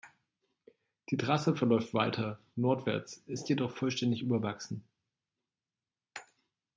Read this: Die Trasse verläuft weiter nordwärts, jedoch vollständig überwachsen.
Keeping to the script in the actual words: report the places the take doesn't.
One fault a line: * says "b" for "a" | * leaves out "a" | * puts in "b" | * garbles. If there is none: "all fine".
* puts in "ist"